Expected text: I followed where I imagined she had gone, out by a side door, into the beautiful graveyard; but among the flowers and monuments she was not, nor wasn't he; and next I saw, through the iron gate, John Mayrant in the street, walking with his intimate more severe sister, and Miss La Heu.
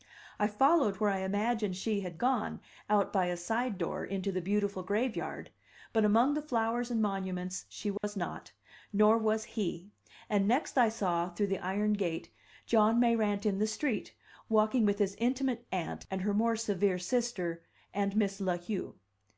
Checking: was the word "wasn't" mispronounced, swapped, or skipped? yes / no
yes